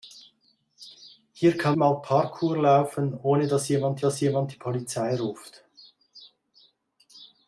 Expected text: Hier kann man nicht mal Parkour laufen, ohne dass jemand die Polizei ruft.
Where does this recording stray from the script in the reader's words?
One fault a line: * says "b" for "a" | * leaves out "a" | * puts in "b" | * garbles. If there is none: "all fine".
* leaves out "man nicht"
* puts in "dass jemand"